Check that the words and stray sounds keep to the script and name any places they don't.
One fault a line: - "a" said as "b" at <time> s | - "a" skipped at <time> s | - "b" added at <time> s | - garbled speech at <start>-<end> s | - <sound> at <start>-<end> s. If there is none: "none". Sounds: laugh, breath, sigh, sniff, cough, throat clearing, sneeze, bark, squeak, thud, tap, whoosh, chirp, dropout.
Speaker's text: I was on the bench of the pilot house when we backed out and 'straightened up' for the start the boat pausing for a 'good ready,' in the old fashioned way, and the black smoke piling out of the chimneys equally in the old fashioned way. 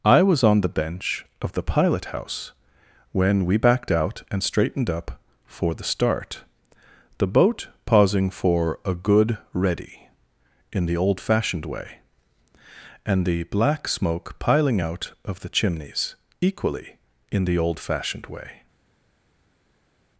none